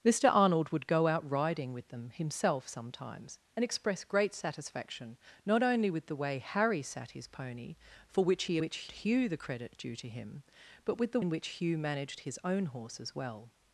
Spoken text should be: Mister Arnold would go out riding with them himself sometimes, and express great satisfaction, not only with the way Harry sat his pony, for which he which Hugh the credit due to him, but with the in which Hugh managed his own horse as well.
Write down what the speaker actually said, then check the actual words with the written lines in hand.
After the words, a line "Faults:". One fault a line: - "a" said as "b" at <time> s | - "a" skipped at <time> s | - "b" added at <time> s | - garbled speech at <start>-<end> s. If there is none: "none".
Mister Arnold would go out riding with them himself sometimes, and express great satisfaction, not only with the way Harry sat his pony, for which he which Hugh the credit due to him, but with the in which Hugh managed his own horse as well.
Faults:
none